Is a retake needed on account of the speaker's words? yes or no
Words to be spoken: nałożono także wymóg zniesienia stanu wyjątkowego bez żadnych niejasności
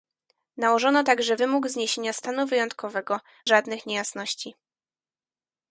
yes